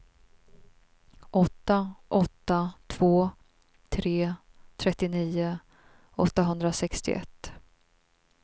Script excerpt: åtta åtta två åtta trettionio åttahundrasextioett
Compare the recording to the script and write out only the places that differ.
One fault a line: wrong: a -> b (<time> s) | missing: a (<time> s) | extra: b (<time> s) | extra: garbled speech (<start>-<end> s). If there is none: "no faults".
wrong: åtta -> tre (3.9 s)